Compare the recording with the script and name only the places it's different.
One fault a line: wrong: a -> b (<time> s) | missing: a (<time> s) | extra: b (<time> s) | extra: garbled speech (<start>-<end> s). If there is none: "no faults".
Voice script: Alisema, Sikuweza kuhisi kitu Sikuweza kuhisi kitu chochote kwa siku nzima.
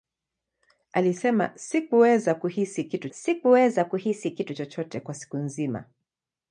no faults